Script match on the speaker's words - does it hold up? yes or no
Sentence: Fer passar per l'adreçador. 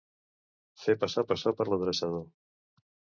no